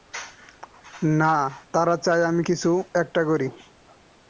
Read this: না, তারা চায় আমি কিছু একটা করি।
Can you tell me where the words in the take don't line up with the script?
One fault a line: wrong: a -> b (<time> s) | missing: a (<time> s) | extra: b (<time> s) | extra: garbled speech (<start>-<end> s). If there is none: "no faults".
no faults